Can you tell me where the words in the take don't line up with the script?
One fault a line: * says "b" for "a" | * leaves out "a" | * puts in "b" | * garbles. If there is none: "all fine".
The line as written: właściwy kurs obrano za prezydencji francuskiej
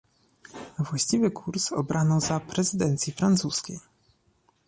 all fine